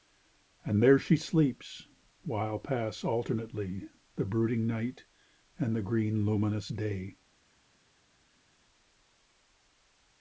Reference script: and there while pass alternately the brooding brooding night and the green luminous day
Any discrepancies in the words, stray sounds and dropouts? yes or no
yes